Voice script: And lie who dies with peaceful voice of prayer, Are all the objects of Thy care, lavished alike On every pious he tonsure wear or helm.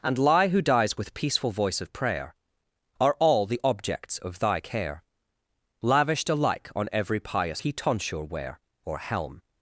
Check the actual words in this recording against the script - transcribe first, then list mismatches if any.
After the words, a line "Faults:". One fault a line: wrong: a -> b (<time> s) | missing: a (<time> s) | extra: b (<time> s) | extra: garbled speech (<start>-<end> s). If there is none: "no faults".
And lie who dies with peaceful voice of prayer, Are all the objects of Thy care, lavished alike On every pious he tonsure wear or helm.
Faults:
no faults